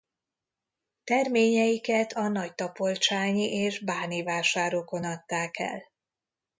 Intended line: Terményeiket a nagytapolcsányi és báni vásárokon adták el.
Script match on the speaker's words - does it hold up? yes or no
yes